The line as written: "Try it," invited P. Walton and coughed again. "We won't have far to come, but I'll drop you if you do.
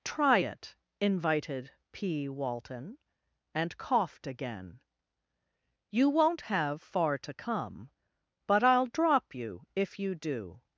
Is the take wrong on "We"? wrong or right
wrong